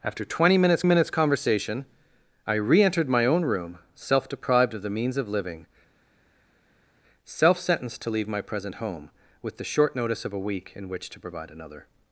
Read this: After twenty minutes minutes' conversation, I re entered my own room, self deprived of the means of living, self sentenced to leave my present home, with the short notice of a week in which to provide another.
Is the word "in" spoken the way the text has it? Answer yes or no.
yes